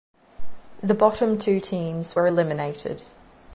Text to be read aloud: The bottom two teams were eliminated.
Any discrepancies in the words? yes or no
no